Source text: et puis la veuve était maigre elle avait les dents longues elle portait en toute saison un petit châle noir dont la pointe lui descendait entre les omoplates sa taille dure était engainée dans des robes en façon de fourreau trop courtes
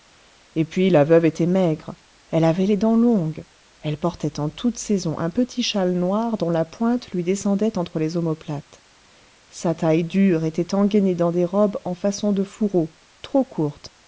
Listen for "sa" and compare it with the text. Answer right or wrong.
right